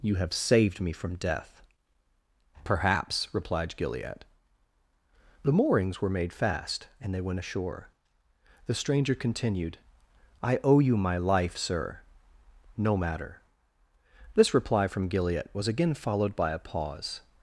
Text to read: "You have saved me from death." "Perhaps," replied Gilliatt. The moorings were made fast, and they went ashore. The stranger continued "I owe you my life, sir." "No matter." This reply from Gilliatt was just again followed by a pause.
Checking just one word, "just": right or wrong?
wrong